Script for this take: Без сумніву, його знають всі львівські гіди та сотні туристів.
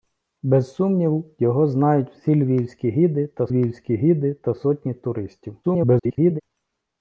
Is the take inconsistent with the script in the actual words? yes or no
yes